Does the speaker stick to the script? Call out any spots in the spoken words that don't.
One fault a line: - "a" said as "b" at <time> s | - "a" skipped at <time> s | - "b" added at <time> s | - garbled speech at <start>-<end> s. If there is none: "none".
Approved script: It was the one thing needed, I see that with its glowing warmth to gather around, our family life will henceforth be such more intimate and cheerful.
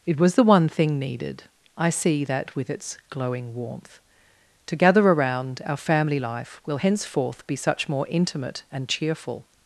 none